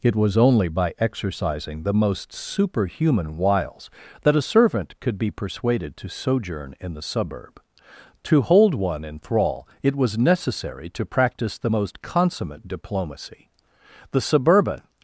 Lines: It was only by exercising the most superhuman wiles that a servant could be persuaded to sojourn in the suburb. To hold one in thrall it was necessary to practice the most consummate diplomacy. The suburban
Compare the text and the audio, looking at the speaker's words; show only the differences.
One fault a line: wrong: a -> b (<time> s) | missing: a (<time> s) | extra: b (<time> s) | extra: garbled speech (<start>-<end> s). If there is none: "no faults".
no faults